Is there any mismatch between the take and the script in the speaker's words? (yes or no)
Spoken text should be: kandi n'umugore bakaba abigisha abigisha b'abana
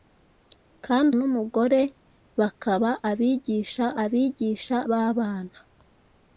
no